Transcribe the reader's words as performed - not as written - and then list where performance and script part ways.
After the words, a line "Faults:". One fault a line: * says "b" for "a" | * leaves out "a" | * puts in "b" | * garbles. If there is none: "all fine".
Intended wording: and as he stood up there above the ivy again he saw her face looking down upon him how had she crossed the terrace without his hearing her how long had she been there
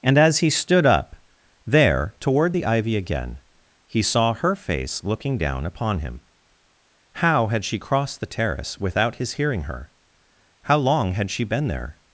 and as he stood up there toward the ivy again he saw her face looking down upon him how had she crossed the terrace without his hearing her how long had she been there
Faults:
* says "toward" for "above"